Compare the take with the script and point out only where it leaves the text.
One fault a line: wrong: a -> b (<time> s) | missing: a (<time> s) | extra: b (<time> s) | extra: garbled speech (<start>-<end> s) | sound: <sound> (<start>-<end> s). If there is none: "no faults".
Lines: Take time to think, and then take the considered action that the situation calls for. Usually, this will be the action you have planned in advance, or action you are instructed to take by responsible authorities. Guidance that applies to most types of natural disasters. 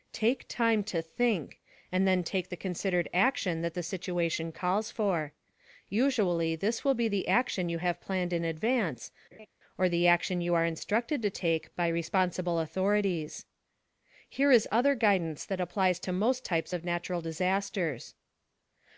sound: laugh (9.3-9.5 s)
extra: the (9.9 s)
extra: Here is other (14.3 s)